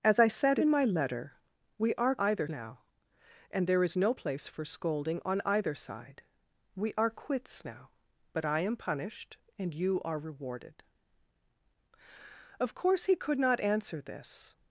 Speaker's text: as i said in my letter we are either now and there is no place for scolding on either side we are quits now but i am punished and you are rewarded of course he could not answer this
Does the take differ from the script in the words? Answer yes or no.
no